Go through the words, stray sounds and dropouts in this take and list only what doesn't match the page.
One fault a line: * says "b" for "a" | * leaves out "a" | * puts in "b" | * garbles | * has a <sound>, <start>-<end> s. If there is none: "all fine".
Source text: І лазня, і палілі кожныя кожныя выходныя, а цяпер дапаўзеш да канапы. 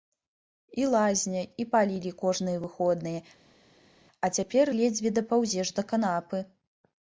* leaves out "кожныя"
* puts in "ледзьве"